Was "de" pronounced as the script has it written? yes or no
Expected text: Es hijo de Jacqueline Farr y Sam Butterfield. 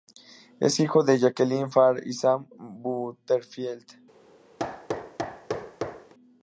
yes